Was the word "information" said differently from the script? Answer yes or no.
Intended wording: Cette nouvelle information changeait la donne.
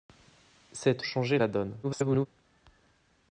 yes